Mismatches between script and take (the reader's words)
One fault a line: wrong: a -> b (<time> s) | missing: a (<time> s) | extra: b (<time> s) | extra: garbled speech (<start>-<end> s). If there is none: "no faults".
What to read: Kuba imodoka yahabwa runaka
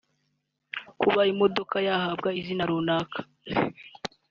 extra: izina (2.4 s)